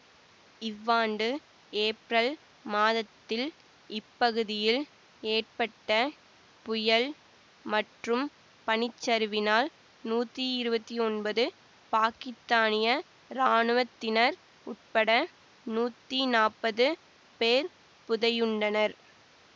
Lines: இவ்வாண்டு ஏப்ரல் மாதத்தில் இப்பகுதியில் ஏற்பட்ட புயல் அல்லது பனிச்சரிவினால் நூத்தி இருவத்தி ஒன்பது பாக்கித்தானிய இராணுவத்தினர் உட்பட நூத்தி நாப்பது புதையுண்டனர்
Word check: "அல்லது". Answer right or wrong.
wrong